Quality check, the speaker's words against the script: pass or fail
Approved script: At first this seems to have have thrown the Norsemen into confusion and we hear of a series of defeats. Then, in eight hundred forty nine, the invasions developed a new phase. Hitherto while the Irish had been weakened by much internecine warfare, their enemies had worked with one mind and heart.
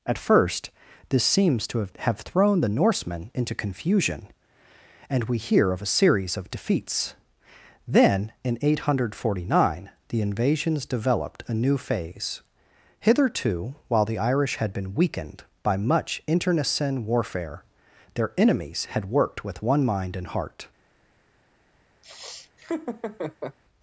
pass